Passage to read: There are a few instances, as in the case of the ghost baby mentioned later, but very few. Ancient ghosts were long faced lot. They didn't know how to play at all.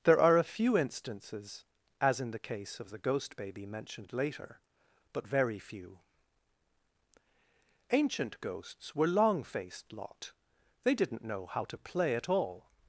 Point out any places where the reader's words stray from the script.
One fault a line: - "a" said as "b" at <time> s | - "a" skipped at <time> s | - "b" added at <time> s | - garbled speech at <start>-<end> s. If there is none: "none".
none